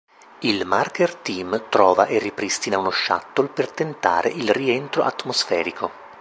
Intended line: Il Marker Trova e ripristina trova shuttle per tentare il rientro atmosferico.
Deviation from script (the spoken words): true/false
true